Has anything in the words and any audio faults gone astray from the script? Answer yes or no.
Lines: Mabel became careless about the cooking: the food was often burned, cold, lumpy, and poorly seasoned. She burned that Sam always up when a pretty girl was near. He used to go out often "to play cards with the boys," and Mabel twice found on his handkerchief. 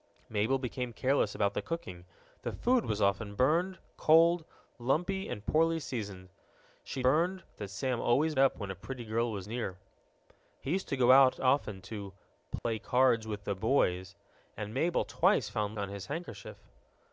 yes